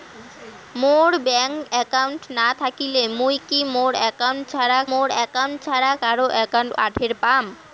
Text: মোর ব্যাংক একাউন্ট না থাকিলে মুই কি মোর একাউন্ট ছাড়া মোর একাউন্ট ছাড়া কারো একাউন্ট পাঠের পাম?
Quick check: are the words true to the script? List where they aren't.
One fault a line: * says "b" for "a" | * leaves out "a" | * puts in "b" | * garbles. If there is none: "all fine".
all fine